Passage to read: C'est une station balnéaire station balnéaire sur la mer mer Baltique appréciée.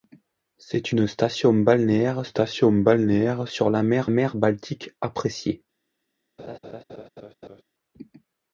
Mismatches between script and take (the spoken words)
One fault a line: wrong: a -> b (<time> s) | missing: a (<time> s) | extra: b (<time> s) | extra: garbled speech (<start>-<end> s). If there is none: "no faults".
no faults